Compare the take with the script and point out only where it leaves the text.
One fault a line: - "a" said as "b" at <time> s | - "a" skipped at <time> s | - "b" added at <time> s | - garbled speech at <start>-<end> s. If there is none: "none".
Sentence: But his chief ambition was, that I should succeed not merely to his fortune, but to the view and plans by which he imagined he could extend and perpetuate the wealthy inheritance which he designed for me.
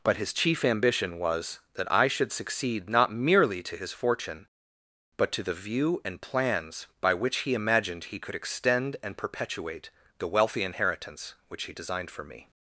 none